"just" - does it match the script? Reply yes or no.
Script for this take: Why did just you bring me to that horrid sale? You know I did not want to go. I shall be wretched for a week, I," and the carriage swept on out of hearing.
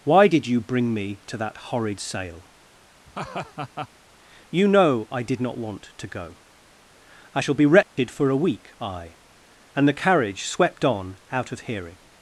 no